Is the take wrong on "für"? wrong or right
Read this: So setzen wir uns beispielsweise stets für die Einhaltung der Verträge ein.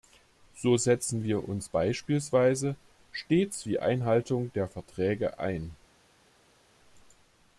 wrong